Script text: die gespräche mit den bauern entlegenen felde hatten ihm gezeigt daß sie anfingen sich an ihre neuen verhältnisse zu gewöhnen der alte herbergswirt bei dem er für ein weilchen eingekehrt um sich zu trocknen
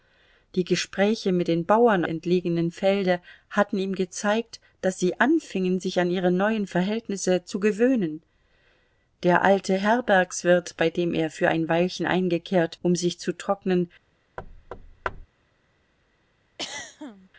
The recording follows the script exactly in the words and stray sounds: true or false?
false